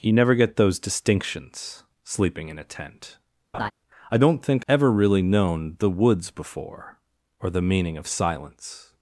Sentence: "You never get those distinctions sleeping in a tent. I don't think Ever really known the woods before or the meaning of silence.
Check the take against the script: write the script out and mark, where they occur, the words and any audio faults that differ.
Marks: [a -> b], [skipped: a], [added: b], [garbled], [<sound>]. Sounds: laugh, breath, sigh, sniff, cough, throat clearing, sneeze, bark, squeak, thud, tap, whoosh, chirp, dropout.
"You never get those distinctions sleeping in a tent. [laugh] I don't think Ever really known the woods before or the meaning of silence.